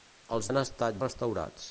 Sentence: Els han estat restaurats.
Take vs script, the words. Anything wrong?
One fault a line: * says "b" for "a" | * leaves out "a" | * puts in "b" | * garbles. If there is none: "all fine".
all fine